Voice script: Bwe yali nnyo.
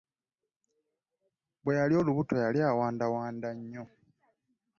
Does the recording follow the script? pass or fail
fail